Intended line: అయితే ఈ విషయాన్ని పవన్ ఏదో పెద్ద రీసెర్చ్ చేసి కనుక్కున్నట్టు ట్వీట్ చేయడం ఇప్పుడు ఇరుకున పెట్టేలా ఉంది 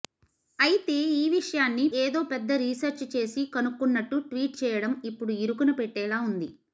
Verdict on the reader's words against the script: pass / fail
fail